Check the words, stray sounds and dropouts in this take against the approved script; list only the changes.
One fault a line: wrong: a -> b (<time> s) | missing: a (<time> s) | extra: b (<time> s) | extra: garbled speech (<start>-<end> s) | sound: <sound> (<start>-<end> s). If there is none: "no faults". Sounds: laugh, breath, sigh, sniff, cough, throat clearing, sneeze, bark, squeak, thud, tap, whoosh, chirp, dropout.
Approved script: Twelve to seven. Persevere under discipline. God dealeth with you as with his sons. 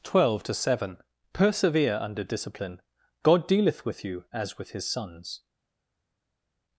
no faults